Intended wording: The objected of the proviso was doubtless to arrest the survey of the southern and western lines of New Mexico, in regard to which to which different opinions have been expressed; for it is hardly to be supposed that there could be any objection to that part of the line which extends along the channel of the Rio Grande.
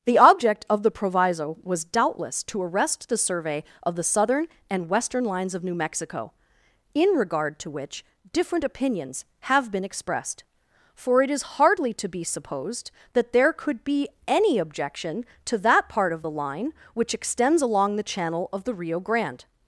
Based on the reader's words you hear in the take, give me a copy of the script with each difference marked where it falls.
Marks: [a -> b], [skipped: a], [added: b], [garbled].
The [objected -> object] of the proviso was doubtless to arrest the survey of the southern and western lines of New Mexico, in regard to which [skipped: to which] different opinions have been expressed; for it is hardly to be supposed that there could be any objection to that part of the line which extends along the channel of the Rio Grande.